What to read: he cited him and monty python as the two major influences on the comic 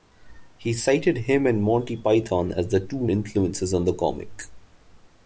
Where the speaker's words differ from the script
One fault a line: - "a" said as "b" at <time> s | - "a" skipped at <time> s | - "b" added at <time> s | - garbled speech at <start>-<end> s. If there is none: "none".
- "major" skipped at 3.1 s